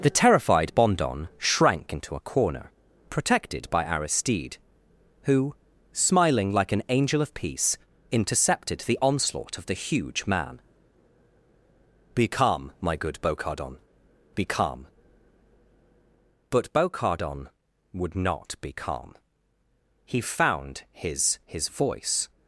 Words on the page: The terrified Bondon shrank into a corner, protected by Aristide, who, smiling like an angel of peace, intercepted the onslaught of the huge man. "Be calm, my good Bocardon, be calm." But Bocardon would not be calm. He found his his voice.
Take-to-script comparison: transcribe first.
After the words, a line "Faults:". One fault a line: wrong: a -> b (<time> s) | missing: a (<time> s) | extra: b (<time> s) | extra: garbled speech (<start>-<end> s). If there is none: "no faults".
The terrified Bondon shrank into a corner, protected by Aristide, who, smiling like an angel of peace, intercepted the onslaught of the huge man. "Be calm, my good Bocardon, be calm." But Bocardon would not be calm. He found his his voice.
Faults:
no faults